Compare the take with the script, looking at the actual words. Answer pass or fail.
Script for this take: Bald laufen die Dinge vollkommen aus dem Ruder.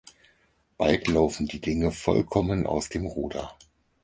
pass